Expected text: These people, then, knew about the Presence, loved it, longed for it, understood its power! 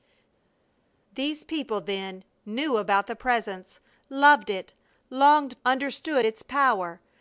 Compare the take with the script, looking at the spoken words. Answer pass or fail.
fail